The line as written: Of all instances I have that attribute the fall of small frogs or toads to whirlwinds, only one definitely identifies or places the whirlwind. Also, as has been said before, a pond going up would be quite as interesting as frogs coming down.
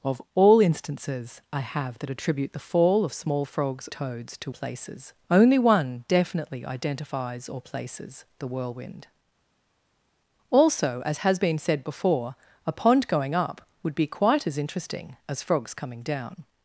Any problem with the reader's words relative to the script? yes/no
yes